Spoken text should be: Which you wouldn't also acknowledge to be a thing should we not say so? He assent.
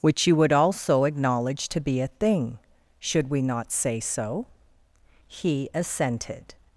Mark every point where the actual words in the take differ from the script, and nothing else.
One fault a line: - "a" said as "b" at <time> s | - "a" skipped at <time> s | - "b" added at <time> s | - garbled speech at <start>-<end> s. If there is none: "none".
- "wouldn't" said as "would" at 0.3 s
- "assent" said as "assented" at 5.7 s